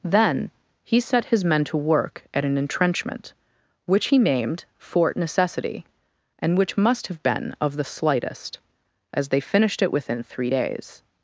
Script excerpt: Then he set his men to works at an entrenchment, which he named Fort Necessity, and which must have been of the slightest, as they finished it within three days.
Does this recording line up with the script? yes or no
no